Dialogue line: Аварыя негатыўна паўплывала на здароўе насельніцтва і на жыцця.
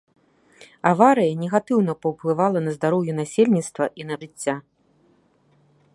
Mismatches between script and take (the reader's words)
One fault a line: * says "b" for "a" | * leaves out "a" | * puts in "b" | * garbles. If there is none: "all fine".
all fine